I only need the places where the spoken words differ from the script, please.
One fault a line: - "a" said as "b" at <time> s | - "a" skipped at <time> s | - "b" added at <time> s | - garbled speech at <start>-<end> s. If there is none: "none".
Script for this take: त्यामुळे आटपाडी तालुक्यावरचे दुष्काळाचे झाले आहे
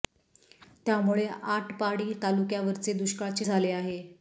none